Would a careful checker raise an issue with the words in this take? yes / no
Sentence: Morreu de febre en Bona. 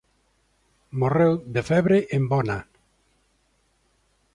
no